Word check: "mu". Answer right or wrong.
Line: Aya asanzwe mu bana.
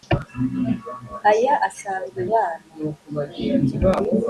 wrong